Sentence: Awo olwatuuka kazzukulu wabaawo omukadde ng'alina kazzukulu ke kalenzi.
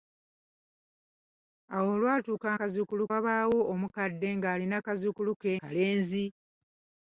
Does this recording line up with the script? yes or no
yes